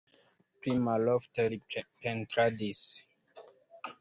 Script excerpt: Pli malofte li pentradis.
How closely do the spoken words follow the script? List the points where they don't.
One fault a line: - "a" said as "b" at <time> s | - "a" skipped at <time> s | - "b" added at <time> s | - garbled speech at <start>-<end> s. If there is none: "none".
none